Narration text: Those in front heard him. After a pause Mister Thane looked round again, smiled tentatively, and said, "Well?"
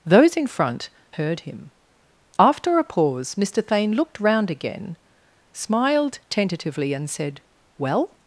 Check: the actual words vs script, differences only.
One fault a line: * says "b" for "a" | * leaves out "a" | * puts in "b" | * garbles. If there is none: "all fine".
all fine